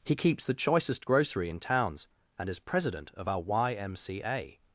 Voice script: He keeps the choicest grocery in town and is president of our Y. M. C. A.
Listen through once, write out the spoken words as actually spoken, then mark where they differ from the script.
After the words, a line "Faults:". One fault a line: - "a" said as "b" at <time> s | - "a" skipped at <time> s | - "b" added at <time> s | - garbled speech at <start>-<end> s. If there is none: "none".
He keeps the choicest grocery in towns and is president of our Y. M. C. A.
Faults:
- "town" said as "towns" at 1.6 s